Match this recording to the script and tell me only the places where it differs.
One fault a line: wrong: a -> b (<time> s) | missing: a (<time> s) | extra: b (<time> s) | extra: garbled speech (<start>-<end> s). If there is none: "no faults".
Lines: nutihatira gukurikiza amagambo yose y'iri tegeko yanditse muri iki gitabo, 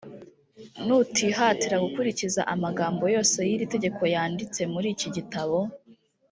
no faults